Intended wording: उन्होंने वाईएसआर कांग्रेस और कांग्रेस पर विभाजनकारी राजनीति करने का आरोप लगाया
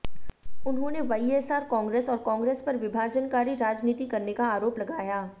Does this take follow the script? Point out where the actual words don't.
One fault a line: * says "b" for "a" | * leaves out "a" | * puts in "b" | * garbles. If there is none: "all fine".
all fine